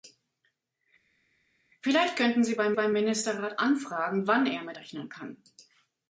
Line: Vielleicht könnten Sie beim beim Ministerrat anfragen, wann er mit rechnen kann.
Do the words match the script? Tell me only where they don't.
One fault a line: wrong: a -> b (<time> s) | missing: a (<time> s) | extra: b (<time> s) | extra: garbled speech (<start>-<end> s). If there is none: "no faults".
no faults